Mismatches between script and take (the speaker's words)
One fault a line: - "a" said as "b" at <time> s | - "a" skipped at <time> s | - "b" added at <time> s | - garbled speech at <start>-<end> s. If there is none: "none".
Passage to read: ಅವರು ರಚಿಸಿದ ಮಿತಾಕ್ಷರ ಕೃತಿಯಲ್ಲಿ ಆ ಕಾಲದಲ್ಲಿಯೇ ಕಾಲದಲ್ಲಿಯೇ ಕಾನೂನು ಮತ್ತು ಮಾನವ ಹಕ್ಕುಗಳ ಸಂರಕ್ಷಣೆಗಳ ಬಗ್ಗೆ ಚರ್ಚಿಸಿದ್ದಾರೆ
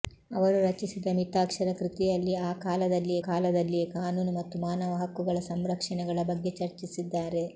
none